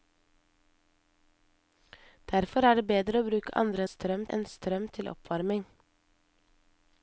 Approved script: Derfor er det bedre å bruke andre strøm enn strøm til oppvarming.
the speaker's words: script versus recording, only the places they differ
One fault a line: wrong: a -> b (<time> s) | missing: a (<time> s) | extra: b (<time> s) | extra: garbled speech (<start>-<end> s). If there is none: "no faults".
no faults